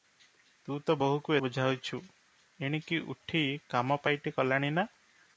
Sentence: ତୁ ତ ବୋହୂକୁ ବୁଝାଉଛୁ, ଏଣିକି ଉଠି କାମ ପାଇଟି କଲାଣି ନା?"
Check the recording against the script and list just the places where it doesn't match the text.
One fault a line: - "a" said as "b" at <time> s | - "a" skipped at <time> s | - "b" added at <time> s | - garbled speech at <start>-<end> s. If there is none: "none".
none